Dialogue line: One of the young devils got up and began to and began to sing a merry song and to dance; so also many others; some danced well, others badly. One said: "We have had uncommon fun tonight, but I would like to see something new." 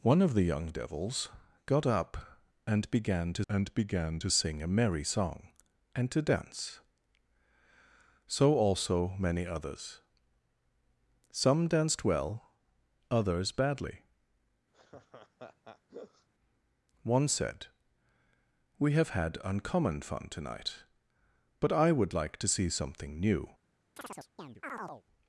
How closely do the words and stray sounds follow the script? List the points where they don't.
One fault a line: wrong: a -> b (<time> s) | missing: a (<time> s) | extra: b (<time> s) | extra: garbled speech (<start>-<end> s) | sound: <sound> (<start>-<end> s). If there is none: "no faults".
sound: laugh (14.7-16.3 s)
sound: chirp (24.0-25.0 s)